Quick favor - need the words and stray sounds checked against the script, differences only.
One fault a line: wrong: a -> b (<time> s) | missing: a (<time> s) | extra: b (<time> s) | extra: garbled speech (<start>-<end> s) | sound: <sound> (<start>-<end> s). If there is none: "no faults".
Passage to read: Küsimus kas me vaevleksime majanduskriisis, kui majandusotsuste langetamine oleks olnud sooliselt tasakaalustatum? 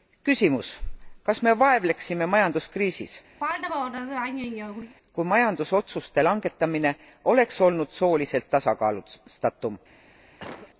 sound: throat clearing (3.4-4.9 s)
sound: cough (10.4-10.7 s)